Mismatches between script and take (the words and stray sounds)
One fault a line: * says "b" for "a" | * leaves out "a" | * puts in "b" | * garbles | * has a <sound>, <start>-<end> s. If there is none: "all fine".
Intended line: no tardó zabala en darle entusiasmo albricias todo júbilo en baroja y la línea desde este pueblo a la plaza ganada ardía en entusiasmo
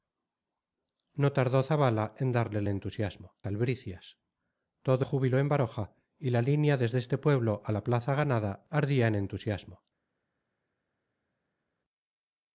all fine